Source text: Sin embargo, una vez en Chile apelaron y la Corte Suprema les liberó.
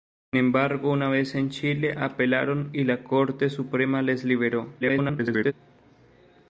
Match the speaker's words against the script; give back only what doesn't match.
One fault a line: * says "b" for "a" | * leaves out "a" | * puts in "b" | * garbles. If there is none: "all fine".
* garbles